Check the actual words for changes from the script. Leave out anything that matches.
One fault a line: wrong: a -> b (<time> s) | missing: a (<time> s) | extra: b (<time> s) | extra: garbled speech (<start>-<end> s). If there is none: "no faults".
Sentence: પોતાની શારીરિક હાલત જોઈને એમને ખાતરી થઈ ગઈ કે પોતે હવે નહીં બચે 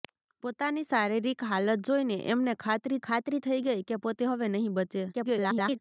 extra: ખાતરી (3.0 s)
extra: garbled speech (5.1-5.8 s)